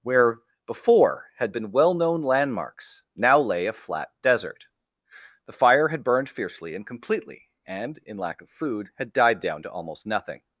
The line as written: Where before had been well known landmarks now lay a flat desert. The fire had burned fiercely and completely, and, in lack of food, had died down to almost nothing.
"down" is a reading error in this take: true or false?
false